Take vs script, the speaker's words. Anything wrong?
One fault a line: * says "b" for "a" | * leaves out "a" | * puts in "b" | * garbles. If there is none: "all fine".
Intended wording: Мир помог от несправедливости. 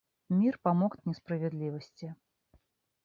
all fine